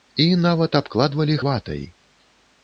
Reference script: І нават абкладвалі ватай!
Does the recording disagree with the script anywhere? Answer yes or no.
no